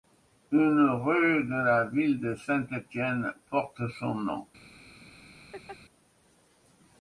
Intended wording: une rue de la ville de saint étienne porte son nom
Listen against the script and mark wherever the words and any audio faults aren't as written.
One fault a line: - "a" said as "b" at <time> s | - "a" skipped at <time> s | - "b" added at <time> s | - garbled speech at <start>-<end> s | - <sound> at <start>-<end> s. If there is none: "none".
- laugh at 5.5-5.8 s